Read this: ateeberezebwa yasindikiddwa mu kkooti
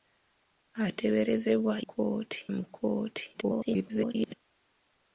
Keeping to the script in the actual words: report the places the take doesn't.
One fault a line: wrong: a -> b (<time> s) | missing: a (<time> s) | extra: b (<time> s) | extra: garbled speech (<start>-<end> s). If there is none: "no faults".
wrong: yasindikiddwa -> kkooti (1.8 s)
extra: garbled speech (3.3-4.3 s)